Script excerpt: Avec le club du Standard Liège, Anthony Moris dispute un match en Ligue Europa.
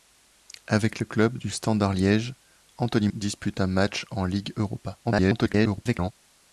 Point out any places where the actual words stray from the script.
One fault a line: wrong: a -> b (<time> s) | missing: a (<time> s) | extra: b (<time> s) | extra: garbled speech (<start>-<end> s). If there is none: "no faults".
missing: Moris (3.1 s)
extra: garbled speech (5.0-6.1 s)